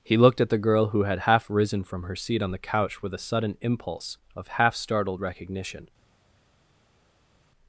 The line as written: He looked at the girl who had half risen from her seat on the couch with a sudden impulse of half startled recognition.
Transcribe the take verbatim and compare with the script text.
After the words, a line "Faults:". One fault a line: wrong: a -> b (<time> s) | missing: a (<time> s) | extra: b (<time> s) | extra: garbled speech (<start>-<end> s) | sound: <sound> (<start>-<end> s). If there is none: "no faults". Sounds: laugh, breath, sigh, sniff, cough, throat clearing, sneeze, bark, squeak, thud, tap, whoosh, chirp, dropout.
He looked at the girl who had half risen from her seat on the couch with a sudden impulse of half startled recognition.
Faults:
no faults